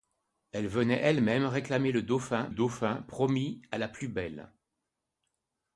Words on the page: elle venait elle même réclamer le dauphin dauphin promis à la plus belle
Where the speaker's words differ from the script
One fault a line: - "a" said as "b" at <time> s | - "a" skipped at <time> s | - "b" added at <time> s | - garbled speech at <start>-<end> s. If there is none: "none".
none